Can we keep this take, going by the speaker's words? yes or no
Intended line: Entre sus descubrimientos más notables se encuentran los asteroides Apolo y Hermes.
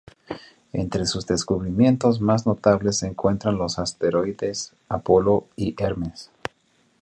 yes